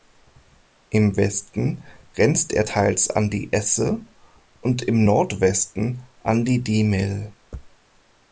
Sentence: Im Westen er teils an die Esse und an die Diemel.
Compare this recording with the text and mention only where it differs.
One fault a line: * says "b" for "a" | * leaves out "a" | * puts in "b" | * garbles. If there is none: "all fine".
* puts in "grenzt"
* puts in "im Nordwesten"